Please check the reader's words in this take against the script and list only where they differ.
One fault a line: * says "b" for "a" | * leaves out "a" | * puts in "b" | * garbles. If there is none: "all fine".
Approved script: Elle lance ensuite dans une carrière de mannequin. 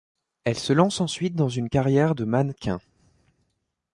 * puts in "se"